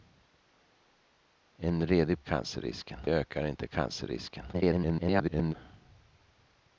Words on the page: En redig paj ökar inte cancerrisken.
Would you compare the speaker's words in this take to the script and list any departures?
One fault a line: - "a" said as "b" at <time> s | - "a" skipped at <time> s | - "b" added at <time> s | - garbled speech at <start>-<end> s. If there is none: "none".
- "paj" said as "cancerrisken" at 2.2 s
- garbled speech at 4.5-5.5 s